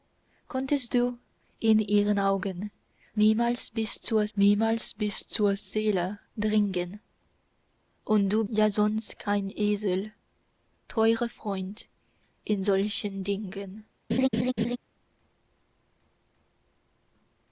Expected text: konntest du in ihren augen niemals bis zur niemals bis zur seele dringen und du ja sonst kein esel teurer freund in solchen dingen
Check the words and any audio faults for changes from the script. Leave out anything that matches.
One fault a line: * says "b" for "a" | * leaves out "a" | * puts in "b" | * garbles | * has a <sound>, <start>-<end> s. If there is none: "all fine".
* has a laugh, 14.1-14.8 s